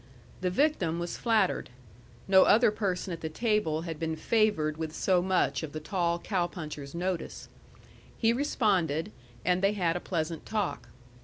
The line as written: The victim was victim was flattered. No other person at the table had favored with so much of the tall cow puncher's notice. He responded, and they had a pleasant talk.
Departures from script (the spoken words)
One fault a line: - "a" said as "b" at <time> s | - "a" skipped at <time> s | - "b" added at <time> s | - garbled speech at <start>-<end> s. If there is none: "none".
- "victim was" skipped at 1.1 s
- "been" added at 4.0 s